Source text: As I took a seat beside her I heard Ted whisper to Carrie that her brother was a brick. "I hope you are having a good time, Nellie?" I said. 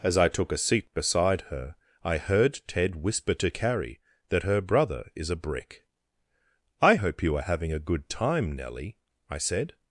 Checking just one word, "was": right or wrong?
wrong